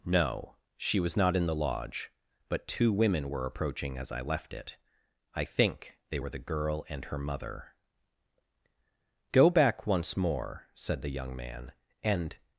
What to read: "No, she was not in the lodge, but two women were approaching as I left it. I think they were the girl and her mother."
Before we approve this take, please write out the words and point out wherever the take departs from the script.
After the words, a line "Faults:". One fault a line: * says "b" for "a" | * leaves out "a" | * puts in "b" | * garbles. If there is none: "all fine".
"No, she was not in the lodge, but two women were approaching as I left it. I think they were the girl and her mother." "Go back once more," said the young man, "and
Faults:
* puts in "Go back once more said the young man and"